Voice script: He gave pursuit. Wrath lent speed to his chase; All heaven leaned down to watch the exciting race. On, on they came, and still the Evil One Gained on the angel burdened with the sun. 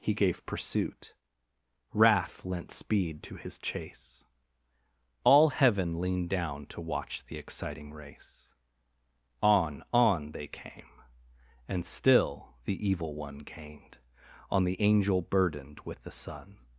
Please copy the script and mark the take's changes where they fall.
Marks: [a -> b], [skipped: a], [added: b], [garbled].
He gave pursuit. Wrath lent speed to his chase; All heaven leaned down to watch the exciting race. On, on they came, and still the Evil One Gained on the angel burdened with the sun.